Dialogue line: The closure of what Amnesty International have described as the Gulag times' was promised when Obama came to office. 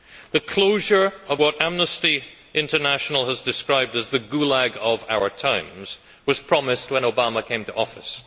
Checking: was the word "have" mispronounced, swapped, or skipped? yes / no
yes